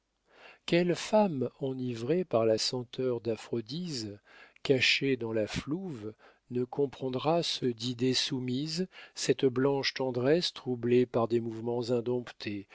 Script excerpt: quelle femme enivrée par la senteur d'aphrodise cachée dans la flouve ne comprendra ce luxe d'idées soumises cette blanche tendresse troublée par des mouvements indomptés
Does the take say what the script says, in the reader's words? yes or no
no